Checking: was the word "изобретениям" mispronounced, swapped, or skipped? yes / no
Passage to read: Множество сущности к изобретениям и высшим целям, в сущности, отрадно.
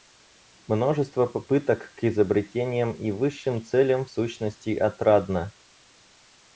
no